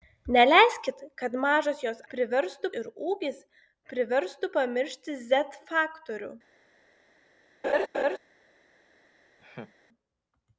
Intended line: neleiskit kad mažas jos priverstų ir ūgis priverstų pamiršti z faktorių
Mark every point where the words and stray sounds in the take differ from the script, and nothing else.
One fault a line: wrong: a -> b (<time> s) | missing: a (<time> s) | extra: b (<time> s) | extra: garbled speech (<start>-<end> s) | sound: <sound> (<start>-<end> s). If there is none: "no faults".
sound: laugh (7.6-8.2 s)
sound: laugh (9.4-9.7 s)